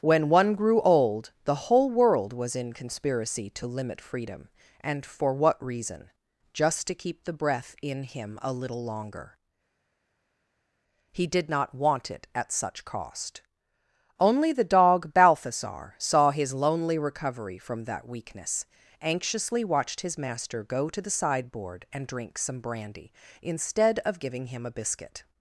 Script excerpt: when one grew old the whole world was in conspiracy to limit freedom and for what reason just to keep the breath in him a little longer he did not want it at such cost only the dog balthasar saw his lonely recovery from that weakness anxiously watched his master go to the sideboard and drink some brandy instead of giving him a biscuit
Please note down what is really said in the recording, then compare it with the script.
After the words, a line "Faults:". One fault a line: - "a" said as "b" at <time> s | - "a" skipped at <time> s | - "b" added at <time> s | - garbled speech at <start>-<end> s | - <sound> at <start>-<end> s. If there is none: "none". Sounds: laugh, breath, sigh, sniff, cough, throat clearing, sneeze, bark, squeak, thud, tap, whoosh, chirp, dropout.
when one grew old the whole world was in conspiracy to limit freedom and for what reason just to keep the breath in him a little longer he did not want it at such cost only the dog balthasar saw his lonely recovery from that weakness anxiously watched his master go to the sideboard and drink some brandy instead of giving him a biscuit
Faults:
none